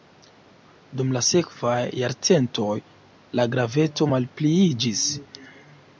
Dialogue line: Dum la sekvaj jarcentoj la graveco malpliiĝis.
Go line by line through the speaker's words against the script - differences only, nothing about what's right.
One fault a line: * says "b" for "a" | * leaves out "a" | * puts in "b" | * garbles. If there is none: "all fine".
all fine